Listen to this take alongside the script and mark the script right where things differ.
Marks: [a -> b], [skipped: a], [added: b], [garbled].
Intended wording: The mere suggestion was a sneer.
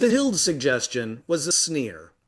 The [mere -> hild] suggestion was a sneer.